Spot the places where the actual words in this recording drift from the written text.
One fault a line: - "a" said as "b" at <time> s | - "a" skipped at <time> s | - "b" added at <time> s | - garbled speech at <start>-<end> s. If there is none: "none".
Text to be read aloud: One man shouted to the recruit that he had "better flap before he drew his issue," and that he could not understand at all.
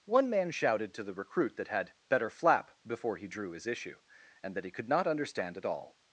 - "he" skipped at 1.7 s